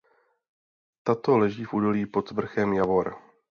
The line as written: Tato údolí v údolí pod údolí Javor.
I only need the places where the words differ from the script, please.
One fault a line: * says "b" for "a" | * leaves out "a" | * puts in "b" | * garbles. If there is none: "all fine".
* says "leží" for "údolí"
* says "vrchem" for "údolí"